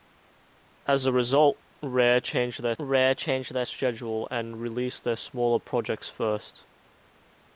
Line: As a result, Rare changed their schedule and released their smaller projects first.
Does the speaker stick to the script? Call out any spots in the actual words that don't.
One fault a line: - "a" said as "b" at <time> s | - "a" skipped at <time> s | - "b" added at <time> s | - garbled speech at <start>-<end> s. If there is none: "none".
- "Rare changed their" added at 2.8 s